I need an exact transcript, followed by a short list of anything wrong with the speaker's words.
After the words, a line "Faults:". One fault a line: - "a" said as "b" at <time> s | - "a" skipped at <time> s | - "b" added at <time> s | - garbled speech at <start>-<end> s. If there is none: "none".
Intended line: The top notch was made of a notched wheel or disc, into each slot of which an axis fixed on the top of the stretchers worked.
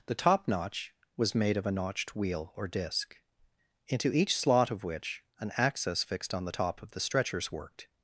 The top notch was made of a notched wheel or disc, into each slot of which an axis fixed on the top of the stretchers worked.
Faults:
none